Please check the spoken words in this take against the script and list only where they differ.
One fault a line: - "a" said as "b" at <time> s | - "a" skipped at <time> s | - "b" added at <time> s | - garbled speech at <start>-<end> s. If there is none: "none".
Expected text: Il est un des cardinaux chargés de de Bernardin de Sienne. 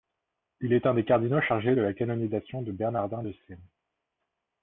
- "la canonisation" added at 1.8 s